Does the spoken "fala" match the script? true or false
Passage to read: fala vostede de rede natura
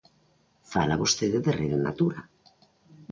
true